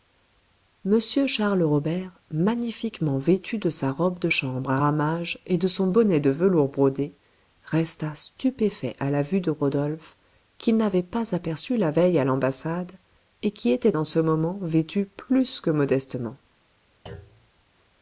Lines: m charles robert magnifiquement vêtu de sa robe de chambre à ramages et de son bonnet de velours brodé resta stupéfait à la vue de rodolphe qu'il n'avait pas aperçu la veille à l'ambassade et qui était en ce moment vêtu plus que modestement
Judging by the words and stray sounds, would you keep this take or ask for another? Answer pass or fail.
fail